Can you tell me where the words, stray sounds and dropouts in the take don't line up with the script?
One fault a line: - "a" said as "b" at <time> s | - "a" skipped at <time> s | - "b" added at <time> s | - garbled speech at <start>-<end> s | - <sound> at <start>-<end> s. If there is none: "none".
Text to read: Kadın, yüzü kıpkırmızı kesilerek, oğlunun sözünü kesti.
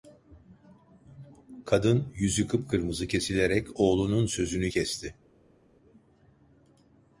none